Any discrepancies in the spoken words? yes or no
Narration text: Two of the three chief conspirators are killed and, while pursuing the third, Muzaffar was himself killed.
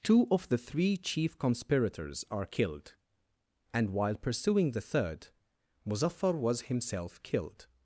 no